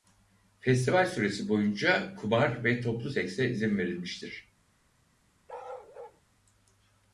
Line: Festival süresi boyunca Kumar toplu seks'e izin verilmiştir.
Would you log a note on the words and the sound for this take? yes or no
yes